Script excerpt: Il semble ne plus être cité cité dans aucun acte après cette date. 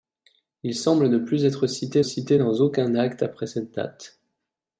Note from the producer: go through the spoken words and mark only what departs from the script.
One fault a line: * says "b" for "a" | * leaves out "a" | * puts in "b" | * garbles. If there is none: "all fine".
all fine